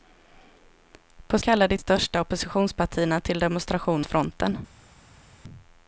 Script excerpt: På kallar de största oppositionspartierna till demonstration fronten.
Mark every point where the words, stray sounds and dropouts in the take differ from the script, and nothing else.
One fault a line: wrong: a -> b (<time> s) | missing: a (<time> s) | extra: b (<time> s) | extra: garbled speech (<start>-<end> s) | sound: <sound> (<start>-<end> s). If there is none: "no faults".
no faults